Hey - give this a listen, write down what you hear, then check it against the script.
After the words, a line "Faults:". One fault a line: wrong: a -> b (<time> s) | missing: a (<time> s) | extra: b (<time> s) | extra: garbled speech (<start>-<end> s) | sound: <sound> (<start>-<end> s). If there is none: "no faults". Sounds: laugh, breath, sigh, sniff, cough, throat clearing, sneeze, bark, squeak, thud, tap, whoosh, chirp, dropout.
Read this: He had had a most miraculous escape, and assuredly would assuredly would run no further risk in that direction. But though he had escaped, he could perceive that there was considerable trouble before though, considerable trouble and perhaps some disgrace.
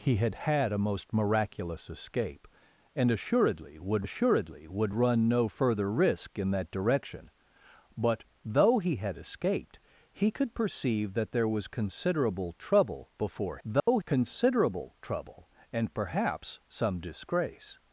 He had had a most miraculous escape, and assuredly would assuredly would run no further risk in that direction. But though he had escaped, he could perceive that there was considerable trouble before though, considerable trouble and perhaps some disgrace.
Faults:
sound: dropout (13.8-13.9 s)